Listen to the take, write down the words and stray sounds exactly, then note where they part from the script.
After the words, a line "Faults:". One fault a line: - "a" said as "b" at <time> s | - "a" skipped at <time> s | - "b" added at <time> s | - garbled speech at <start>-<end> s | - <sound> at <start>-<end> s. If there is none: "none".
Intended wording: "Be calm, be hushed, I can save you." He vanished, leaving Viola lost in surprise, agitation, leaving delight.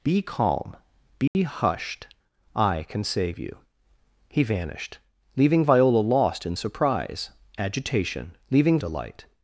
"Be calm, be hushed, I can save you." He vanished, leaving Viola lost in surprise, agitation, leaving delight.
Faults:
- dropout at 1.3-1.3 s